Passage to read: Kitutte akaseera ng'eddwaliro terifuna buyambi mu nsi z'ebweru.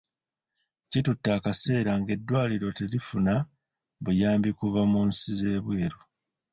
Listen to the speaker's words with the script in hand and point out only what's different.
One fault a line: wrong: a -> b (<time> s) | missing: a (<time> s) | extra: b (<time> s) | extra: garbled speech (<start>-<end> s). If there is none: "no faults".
extra: kuva (4.6 s)